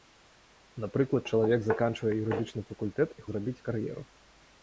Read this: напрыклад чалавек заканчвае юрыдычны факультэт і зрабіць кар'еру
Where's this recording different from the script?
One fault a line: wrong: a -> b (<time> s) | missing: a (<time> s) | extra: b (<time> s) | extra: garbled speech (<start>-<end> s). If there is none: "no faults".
no faults